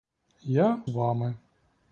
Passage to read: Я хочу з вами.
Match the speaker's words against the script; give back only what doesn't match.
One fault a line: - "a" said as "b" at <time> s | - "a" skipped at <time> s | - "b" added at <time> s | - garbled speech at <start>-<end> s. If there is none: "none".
- "хочу з" skipped at 0.8 s